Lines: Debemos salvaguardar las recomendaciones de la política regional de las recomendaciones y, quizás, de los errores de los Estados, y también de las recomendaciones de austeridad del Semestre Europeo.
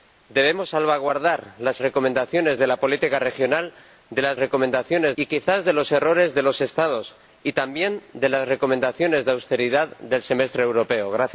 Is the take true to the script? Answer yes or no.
yes